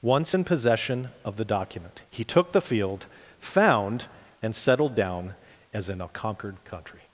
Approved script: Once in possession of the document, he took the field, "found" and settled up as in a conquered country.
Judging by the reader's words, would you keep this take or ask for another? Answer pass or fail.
fail